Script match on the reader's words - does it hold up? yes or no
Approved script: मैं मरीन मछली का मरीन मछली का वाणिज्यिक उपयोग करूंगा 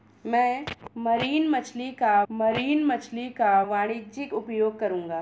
yes